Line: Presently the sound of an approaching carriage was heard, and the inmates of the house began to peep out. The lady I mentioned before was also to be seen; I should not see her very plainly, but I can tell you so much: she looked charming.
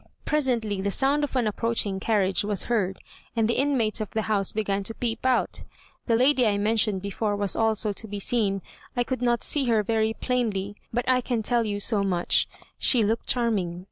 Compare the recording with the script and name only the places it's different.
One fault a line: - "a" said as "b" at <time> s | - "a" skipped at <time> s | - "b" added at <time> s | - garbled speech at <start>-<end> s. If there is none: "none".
- "should" said as "could" at 9.0 s